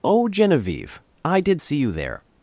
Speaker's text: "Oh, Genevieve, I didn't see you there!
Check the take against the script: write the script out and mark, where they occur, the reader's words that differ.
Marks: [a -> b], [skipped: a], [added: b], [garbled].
"Oh, Genevieve, I [didn't -> did] see you there!